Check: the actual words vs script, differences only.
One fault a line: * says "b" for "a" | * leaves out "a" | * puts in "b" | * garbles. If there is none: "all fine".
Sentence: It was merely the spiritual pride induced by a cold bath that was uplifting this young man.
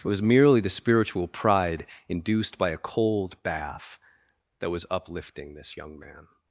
all fine